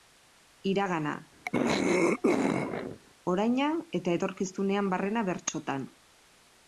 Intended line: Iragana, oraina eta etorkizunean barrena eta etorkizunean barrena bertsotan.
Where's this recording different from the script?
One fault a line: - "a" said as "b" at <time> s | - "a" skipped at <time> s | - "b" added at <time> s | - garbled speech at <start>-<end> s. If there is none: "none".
- "eta etorkizunean barrena" skipped at 5.3 s